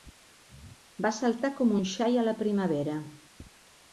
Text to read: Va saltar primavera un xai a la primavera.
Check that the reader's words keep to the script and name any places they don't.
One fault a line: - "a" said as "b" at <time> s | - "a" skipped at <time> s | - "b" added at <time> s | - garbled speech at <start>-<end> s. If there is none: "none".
- "primavera" said as "com" at 1.6 s